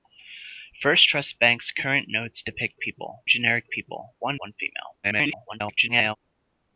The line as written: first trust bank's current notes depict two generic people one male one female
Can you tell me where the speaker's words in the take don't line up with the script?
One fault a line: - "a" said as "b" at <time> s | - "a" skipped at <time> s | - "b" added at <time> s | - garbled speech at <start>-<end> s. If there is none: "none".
- "two" said as "people" at 2.8 s
- "male" skipped at 4.4 s
- garbled speech at 5.0-6.2 s